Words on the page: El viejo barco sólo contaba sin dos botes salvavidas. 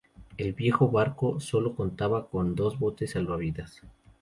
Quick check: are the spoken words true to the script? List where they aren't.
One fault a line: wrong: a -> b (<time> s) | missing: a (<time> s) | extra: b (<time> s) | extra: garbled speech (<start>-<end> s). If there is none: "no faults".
wrong: sin -> con (2.3 s)